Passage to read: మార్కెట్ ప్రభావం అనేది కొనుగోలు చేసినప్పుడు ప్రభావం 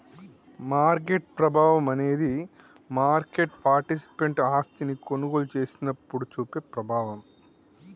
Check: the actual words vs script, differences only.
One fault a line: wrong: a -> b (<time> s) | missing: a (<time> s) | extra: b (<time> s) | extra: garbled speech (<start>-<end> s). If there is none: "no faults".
extra: మార్కెట్ పార్టిసిపెంట్ ఆస్తిని (2.9 s)
extra: చూపే (6.3 s)